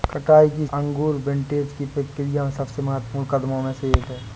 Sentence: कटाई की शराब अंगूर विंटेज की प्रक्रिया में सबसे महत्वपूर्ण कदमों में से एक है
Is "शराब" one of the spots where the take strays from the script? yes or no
yes